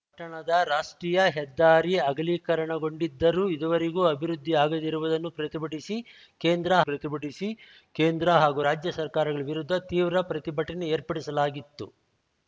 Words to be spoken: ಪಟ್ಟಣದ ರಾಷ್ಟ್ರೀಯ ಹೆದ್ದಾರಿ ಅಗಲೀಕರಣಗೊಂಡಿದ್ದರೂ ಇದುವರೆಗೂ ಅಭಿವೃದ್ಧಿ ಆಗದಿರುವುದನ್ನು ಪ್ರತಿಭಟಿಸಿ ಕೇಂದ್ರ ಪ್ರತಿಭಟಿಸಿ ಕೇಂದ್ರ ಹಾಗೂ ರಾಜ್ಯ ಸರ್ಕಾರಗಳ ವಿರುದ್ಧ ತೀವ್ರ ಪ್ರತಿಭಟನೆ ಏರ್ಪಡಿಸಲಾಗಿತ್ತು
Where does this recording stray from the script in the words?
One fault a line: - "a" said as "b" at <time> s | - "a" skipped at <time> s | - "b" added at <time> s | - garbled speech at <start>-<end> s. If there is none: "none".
none